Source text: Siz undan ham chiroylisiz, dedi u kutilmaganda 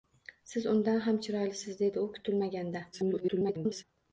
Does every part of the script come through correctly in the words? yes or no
no